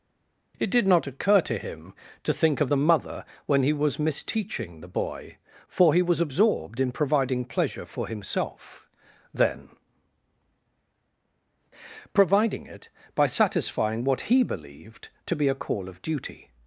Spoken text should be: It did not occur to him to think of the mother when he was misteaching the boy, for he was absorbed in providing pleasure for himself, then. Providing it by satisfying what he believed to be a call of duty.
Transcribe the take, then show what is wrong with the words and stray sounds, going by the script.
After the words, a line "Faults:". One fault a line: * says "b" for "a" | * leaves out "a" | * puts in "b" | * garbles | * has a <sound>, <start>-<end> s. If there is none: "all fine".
It did not occur to him to think of the mother when he was misteaching the boy, for he was absorbed in providing pleasure for himself, then. Providing it by satisfying what he believed to be a call of duty.
Faults:
all fine